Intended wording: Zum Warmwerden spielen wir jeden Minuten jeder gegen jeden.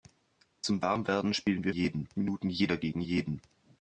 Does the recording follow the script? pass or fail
pass